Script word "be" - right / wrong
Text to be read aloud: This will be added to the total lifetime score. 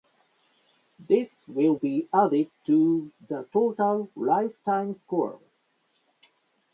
right